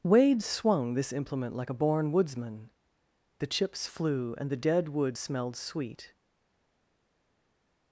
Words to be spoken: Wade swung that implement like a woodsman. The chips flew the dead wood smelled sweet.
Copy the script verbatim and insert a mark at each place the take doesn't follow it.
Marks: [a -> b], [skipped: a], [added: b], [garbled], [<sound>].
Wade swung [that -> this] implement like a [added: born] woodsman. The chips flew [added: and] the dead wood smelled sweet.